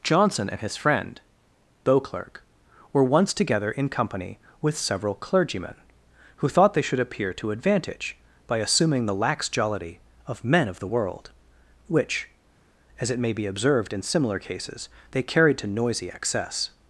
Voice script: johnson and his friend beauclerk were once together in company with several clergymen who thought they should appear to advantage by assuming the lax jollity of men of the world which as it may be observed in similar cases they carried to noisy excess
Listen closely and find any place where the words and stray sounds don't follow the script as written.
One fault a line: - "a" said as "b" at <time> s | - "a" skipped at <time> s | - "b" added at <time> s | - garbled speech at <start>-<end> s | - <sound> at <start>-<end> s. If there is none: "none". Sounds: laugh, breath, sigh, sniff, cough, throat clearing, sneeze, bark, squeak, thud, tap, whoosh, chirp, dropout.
none